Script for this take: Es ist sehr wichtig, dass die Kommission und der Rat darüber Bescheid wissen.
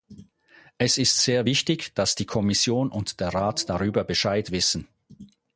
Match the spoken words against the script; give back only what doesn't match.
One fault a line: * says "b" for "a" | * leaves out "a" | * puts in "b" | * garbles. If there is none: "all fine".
all fine